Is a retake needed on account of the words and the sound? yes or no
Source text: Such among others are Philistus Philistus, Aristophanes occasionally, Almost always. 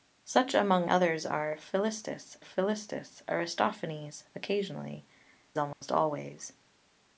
yes